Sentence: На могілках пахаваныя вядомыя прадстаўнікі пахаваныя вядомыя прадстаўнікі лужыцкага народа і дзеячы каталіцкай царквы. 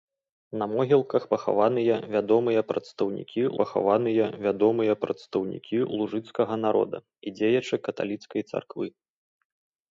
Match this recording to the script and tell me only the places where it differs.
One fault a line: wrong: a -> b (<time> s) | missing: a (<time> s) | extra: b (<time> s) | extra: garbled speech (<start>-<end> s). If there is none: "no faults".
no faults